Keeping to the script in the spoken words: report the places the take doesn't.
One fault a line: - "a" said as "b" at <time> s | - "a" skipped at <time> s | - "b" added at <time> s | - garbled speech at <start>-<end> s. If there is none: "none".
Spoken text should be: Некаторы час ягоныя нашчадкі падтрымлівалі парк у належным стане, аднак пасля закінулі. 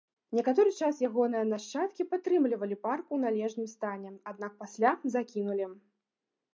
none